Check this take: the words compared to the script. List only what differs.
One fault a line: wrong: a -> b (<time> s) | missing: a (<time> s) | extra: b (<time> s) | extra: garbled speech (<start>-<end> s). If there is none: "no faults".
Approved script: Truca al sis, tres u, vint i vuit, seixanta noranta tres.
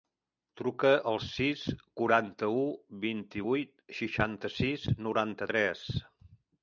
wrong: tres -> quaranta (2.0 s)
extra: sis (4.6 s)